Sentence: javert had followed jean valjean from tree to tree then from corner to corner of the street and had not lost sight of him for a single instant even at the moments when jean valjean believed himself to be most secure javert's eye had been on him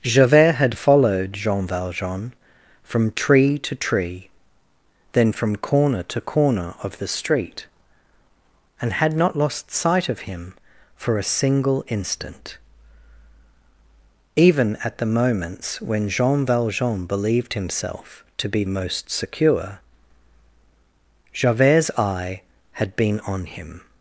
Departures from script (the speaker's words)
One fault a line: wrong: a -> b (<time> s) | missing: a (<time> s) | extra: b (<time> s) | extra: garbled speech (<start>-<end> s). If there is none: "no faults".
no faults